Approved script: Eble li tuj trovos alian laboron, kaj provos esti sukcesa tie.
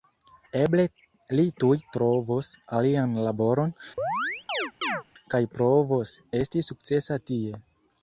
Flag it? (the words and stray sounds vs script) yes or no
yes